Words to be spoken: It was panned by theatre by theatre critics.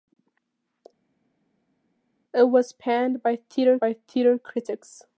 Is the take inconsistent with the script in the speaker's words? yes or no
no